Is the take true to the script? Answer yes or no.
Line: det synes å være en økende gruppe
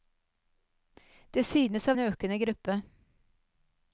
no